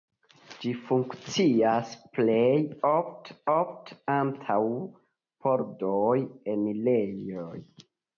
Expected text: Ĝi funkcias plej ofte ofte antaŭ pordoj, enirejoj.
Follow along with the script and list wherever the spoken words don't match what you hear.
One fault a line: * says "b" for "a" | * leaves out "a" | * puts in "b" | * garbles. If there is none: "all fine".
all fine